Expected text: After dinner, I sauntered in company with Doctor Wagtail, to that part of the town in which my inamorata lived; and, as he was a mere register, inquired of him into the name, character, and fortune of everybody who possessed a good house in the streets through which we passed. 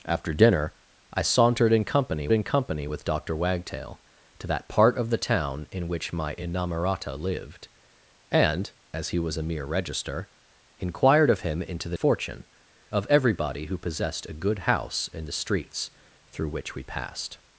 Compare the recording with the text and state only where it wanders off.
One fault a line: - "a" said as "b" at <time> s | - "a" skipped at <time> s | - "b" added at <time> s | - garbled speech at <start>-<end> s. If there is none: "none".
- "in company" added at 2.3 s
- "name character and" skipped at 12.0 s